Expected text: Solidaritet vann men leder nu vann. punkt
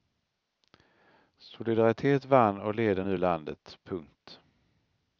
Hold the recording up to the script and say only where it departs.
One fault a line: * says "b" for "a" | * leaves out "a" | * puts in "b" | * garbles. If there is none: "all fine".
* says "och" for "men"
* says "landet" for "vann"